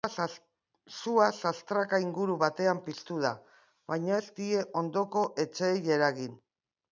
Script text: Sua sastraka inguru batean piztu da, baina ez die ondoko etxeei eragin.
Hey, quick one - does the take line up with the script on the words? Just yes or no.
yes